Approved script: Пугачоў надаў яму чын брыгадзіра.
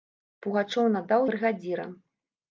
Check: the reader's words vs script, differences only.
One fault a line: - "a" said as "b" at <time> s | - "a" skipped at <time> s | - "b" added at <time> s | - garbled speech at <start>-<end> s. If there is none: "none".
- "яму чын" skipped at 1.3 s